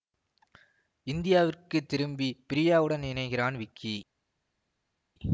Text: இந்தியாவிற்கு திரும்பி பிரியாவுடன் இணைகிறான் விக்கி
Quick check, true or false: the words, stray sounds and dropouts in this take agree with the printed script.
true